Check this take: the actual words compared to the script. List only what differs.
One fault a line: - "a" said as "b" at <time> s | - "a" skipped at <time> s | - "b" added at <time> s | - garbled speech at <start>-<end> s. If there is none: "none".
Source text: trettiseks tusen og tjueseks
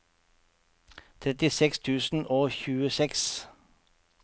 none